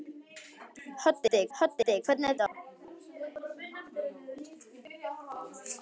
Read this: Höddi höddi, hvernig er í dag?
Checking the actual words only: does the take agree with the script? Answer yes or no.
yes